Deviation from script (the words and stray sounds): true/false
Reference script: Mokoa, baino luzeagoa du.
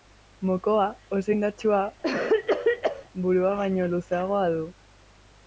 true